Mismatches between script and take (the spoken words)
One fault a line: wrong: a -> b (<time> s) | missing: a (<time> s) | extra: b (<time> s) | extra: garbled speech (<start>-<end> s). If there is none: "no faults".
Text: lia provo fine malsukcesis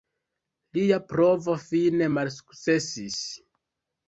no faults